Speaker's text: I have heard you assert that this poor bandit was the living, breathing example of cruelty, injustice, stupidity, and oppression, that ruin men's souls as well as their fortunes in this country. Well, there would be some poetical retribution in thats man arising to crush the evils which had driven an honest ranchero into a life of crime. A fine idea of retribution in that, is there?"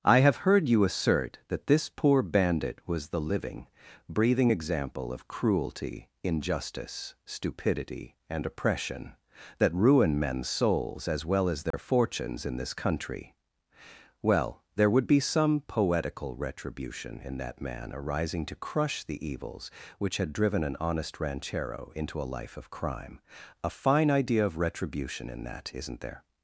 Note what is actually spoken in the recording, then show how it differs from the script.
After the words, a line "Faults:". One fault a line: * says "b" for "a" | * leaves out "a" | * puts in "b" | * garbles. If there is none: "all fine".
I have heard you assert that this poor bandit was the living, breathing example of cruelty, injustice, stupidity, and oppression, that ruin men's souls as well as their fortunes in this country. Well, there would be some poetical retribution in that man arising to crush the evils which had driven an honest ranchero into a life of crime. A fine idea of retribution in that, isn't there?"
Faults:
* says "that" for "thats"
* says "isn't" for "is"